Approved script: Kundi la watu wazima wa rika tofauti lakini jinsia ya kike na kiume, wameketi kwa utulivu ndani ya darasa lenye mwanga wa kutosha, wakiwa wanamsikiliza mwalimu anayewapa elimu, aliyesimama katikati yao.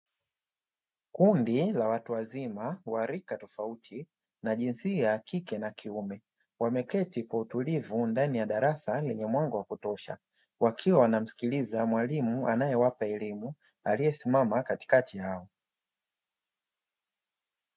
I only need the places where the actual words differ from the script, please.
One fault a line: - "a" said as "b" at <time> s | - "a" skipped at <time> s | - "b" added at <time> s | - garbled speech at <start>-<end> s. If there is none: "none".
- "lakini" said as "na" at 4.4 s